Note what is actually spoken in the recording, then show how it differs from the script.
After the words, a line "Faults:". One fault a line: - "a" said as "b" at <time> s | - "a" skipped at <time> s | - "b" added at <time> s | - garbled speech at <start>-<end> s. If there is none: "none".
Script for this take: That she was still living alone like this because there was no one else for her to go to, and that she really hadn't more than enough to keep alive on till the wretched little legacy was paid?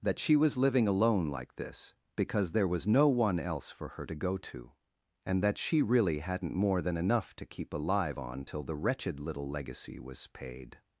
That she was living alone like this because there was no one else for her to go to, and that she really hadn't more than enough to keep alive on till the wretched little legacy was paid?
Faults:
- "still" skipped at 0.6 s